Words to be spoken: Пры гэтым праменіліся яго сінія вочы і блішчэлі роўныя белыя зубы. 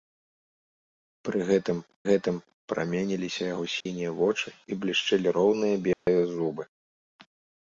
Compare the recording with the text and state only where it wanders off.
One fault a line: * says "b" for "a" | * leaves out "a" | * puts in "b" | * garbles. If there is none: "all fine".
* puts in "гэтым"